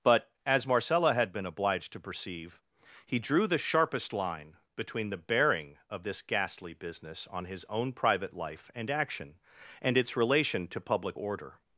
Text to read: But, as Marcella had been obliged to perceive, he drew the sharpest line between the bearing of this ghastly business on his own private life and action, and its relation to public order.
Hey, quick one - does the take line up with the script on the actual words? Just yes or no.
yes